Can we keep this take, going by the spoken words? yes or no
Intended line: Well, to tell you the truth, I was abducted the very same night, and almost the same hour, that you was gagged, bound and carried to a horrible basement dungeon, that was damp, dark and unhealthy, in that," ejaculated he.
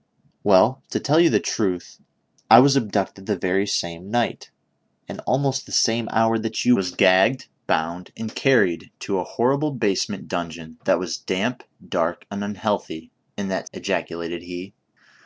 yes